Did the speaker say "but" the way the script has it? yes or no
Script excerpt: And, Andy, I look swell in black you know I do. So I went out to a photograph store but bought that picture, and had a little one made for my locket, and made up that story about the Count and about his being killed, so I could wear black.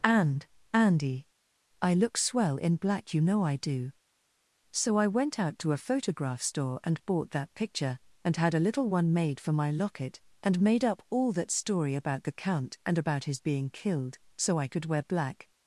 no